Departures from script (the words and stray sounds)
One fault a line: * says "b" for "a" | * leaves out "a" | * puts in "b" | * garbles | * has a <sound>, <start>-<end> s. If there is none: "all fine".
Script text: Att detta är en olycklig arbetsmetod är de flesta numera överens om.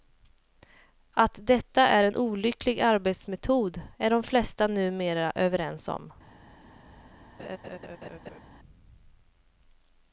* has a laugh, 7.4-8.4 s